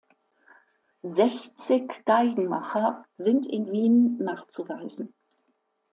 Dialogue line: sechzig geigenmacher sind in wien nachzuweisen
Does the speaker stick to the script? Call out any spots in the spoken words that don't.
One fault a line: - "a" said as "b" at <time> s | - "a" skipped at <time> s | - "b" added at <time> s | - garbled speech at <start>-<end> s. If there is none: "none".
none